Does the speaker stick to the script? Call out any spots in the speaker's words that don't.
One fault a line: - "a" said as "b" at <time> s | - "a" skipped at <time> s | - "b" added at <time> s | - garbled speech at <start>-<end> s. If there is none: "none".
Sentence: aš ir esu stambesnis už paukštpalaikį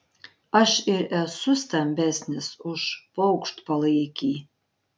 none